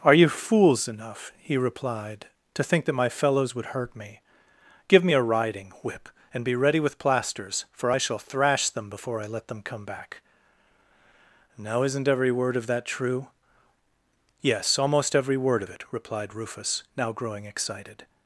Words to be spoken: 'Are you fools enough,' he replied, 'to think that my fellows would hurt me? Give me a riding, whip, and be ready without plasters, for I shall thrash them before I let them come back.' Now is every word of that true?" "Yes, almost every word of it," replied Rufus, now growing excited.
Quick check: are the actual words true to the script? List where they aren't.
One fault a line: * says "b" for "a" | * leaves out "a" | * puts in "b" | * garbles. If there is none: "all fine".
* says "with" for "without"
* says "isn't" for "is"